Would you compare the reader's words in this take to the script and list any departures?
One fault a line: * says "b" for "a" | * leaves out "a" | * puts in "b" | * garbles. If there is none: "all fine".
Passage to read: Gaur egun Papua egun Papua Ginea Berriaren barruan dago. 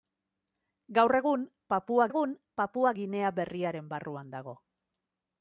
all fine